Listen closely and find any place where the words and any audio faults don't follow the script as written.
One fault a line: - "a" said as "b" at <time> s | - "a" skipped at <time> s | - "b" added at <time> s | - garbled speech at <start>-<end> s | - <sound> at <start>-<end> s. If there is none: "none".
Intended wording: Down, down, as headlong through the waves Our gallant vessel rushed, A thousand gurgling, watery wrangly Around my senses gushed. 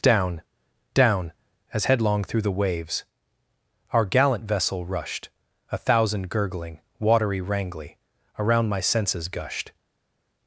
none